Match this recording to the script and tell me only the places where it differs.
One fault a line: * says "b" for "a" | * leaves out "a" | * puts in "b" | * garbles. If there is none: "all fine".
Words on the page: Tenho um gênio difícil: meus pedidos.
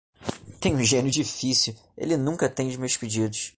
* puts in "ele nunca atende"